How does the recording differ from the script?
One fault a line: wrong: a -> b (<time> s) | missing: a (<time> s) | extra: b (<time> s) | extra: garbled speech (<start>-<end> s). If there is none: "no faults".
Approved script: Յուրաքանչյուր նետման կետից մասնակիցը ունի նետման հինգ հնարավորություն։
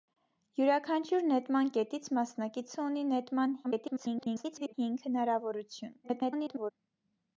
extra: garbled speech (3.6-4.7 s)
extra: garbled speech (6.0-6.7 s)